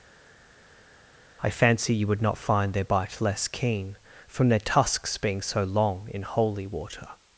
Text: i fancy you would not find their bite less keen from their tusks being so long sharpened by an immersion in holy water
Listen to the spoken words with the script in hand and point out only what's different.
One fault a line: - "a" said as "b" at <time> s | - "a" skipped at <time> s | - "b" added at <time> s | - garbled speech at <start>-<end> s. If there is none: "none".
- "sharpened by an immersion" skipped at 6.1 s